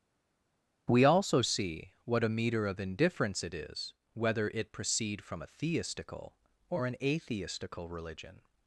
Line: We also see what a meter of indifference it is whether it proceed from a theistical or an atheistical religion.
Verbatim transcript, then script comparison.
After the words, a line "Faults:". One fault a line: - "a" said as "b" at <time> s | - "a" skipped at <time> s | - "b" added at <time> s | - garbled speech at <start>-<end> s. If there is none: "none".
We also see what a meter of indifference it is whether it proceed from a theistical or an atheistical religion.
Faults:
none